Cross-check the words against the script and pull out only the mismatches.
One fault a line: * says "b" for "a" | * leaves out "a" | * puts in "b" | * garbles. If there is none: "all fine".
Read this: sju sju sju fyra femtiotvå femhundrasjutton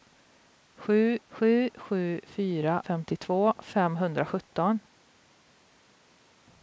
all fine